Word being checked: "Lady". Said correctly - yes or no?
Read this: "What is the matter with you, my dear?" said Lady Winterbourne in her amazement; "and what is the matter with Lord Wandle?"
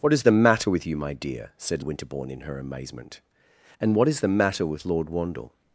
no